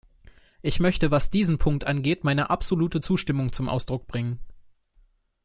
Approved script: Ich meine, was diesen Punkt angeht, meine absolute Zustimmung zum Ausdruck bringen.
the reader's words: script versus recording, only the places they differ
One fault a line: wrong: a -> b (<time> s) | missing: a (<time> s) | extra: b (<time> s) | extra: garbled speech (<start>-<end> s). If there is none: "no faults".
wrong: meine -> möchte (0.8 s)